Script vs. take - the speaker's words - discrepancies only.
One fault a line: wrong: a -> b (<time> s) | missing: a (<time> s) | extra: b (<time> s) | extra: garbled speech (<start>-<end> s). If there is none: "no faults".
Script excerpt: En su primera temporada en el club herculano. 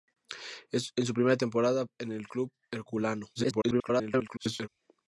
extra: garbled speech (3.3-4.7 s)